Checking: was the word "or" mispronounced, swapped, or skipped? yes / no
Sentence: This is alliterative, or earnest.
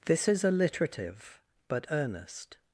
yes